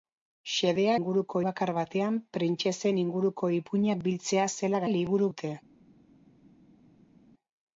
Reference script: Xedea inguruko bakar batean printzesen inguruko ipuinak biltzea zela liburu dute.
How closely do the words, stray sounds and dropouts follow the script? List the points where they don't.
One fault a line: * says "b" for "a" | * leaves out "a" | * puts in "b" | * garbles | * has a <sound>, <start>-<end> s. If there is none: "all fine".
all fine